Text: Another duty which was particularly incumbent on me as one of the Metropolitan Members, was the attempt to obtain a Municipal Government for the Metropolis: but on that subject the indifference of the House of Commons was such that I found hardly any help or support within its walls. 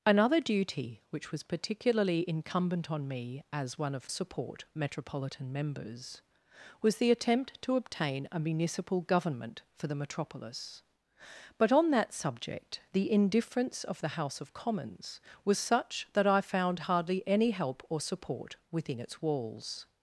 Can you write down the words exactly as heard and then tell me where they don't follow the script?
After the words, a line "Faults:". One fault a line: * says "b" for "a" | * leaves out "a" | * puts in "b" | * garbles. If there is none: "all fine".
Another duty which was particularly incumbent on me as one of support Metropolitan Members, was the attempt to obtain a Municipal Government for the Metropolis: but on that subject the indifference of the House of Commons was such that I found hardly any help or support within its walls.
Faults:
* says "support" for "the"